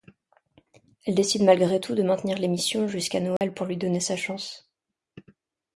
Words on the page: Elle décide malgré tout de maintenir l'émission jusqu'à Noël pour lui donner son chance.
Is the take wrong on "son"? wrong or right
wrong